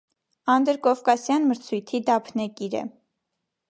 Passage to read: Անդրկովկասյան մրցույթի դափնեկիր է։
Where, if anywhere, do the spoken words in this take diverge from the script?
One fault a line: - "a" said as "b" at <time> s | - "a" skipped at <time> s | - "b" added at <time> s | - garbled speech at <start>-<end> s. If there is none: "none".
none